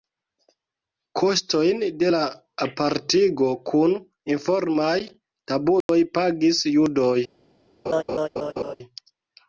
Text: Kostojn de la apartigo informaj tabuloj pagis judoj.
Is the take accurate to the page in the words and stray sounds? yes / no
no